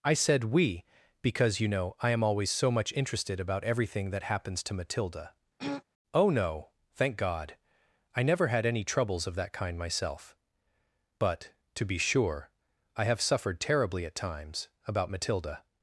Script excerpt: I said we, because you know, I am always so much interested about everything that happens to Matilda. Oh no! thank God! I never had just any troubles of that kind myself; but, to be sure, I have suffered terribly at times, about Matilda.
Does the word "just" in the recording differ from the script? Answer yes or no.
yes